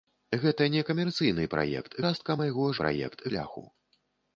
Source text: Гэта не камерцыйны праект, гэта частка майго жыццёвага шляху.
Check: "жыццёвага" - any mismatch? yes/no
yes